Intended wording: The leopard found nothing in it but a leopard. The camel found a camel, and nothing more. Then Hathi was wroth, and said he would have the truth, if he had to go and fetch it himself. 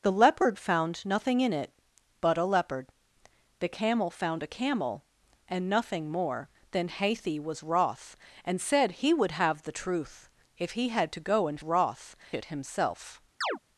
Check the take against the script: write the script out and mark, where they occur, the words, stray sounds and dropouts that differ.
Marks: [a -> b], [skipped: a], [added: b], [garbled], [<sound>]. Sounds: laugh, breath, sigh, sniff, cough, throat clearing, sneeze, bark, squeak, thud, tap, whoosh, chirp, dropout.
The leopard found nothing in it but a leopard. The camel found a camel, and nothing more. Then Hathi was wroth, and said he would have the truth, if he had to go and [fetch -> wroth] it himself. [chirp]